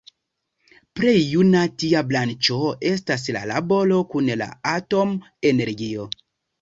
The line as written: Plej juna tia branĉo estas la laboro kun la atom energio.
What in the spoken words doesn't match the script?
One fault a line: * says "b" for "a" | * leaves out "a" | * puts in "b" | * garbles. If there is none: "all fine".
all fine